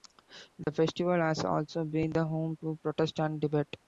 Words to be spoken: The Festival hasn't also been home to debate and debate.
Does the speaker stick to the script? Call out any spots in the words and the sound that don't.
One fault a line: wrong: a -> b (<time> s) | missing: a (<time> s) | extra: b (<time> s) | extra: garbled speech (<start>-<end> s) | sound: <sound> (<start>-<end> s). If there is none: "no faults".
sound: dropout (0.6-0.7 s)
wrong: hasn't -> has (1.2 s)
extra: the (2.1 s)
wrong: debate -> protest (2.8 s)